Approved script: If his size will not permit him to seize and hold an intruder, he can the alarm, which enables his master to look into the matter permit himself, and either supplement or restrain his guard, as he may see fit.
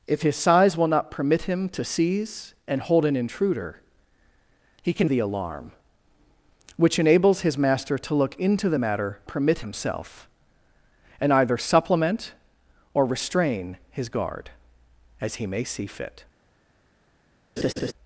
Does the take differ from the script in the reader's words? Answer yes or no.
no